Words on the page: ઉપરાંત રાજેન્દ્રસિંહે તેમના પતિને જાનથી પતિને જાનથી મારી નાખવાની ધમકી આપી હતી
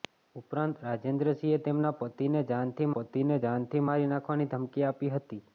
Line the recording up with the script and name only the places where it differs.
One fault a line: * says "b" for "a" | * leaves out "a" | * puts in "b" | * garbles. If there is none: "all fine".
all fine